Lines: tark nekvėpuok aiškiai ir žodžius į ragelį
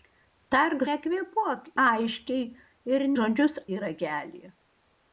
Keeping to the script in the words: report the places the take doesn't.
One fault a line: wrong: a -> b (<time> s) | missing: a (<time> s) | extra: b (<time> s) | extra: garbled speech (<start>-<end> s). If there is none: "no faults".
no faults